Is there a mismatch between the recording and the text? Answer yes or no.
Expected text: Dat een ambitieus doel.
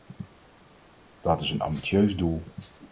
yes